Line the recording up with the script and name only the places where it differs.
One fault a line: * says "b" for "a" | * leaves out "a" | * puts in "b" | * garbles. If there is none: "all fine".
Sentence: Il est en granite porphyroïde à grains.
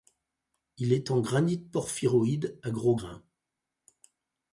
* puts in "gros"